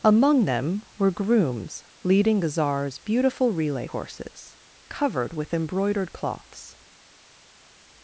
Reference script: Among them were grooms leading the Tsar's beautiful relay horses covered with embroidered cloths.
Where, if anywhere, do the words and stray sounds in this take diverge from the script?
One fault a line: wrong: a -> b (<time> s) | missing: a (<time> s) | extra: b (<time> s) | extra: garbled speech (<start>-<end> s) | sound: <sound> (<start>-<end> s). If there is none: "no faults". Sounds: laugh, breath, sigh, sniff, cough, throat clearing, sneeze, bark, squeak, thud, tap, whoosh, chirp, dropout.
no faults